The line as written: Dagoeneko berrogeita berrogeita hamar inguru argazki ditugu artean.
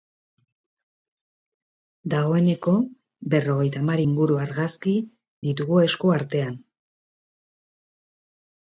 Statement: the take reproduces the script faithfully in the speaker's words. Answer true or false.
false